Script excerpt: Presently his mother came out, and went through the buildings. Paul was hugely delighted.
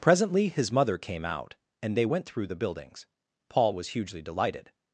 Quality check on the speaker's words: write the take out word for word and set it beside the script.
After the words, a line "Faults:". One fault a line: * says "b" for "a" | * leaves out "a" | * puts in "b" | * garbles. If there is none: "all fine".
Presently his mother came out, and they went through the buildings. Paul was hugely delighted.
Faults:
* puts in "they"